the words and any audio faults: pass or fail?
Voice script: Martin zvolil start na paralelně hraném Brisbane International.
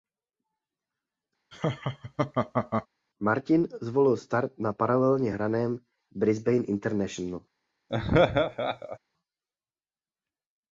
fail